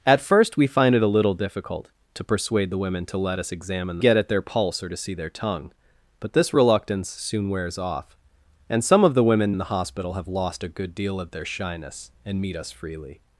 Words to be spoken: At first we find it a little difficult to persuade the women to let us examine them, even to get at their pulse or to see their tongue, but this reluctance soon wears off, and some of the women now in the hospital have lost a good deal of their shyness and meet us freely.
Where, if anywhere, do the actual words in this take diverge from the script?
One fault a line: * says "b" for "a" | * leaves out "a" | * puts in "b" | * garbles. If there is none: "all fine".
* leaves out "them even to"
* leaves out "now"